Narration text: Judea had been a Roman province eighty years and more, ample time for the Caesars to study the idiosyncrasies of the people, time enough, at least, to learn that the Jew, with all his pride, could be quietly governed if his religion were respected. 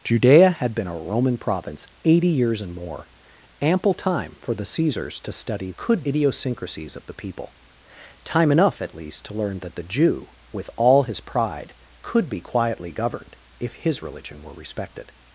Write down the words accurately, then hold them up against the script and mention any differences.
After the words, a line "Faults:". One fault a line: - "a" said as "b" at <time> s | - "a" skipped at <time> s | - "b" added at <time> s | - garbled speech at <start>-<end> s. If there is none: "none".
Judea had been a Roman province eighty years and more, ample time for the Caesars to study could idiosyncrasies of the people, time enough, at least, to learn that the Jew, with all his pride, could be quietly governed if his religion were respected.
Faults:
- "the" said as "could" at 5.8 s